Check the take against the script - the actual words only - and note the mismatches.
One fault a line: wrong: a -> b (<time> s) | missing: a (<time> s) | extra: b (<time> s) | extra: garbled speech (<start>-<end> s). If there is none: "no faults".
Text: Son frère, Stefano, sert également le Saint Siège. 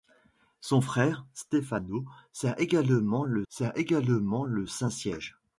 extra: sert également le (3.5 s)